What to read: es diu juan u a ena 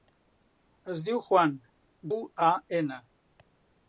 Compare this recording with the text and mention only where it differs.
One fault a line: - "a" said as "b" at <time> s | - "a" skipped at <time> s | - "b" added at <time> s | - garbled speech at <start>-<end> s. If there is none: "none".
none